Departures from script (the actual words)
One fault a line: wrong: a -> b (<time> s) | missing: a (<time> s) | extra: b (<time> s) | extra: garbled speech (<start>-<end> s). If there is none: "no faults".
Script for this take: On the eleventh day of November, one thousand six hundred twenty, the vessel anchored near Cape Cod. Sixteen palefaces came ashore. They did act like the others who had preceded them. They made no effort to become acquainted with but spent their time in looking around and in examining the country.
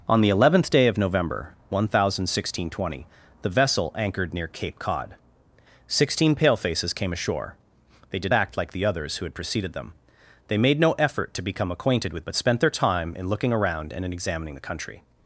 no faults